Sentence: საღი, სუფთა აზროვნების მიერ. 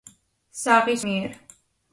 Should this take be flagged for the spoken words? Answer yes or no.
yes